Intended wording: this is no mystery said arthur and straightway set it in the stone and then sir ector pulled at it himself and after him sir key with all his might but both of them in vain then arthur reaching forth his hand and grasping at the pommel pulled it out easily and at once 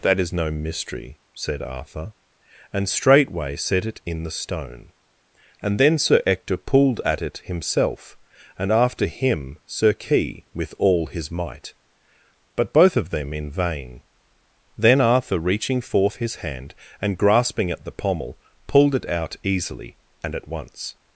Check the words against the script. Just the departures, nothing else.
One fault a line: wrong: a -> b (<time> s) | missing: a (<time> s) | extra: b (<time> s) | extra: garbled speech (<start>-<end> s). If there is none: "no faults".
wrong: this -> that (0.0 s)